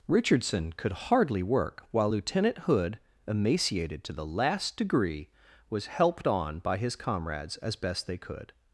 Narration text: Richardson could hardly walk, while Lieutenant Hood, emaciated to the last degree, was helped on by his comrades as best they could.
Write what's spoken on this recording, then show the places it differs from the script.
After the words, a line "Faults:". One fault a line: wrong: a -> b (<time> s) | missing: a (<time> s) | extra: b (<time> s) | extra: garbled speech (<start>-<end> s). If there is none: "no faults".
Richardson could hardly work, while Lieutenant Hood, emaciated to the last degree, was helped on by his comrades as best they could.
Faults:
wrong: walk -> work (1.4 s)